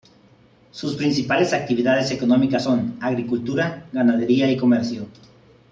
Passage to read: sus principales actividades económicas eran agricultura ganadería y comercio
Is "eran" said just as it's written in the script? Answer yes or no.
no